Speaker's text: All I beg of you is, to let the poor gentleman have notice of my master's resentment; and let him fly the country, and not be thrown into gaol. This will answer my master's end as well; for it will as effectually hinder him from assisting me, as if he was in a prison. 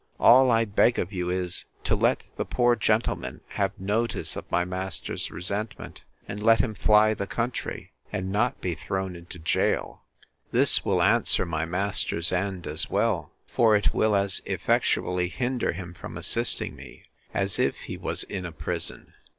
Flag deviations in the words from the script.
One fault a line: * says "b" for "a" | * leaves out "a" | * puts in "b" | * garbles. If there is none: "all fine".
all fine